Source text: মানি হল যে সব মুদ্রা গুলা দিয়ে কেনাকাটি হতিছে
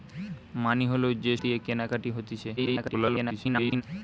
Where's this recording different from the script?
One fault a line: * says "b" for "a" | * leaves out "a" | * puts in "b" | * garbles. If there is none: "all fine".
* leaves out "সব মুদ্রা গুলা"
* garbles